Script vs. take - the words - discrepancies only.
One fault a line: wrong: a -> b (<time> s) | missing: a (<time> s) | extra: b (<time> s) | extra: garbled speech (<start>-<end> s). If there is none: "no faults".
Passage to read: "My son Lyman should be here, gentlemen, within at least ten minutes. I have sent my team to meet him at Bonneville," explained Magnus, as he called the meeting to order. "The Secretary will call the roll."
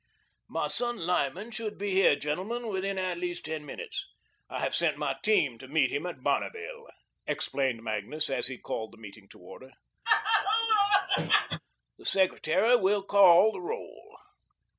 no faults